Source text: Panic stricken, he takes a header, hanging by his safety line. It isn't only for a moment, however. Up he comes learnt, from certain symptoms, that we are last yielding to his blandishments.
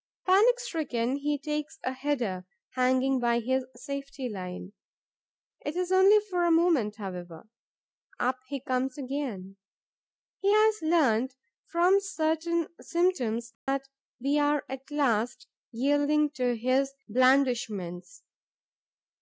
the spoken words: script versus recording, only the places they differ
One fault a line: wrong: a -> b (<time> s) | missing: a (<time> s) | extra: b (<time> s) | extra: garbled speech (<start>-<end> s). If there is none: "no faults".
wrong: isn't -> is (5.8 s)
extra: again He has (9.0 s)
extra: at (14.7 s)